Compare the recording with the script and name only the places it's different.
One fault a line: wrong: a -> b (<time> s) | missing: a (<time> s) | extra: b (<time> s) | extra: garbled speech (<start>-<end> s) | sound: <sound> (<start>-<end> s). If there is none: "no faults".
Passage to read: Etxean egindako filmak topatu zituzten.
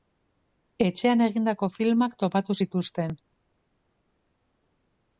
no faults